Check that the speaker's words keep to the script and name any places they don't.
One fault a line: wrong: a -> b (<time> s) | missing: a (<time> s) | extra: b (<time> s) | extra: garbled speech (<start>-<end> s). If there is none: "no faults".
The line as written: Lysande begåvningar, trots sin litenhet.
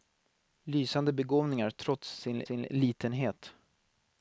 extra: sin (2.4 s)